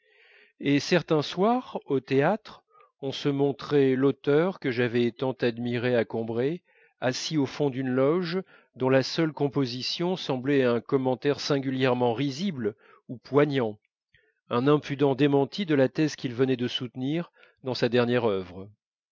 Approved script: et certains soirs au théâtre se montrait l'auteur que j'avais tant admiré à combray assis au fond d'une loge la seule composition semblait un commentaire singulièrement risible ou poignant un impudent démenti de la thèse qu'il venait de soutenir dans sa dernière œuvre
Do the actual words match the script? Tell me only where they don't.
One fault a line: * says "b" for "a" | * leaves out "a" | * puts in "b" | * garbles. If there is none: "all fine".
* puts in "on"
* puts in "dont"